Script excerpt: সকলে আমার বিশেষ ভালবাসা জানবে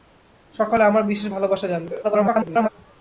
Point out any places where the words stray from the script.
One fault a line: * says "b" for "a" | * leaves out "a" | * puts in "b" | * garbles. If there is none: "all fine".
* garbles